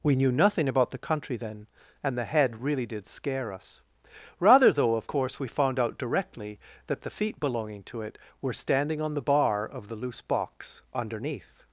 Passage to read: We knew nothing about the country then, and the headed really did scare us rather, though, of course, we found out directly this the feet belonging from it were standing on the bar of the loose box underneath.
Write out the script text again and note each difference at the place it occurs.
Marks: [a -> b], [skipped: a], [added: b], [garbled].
We knew nothing about the country then, and the [headed -> head] really did scare us rather, though, of course, we found out directly [this -> that] the feet belonging [from -> to] it were standing on the bar of the loose box underneath.